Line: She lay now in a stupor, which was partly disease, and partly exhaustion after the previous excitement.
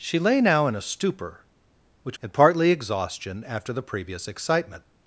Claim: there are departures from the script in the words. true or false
true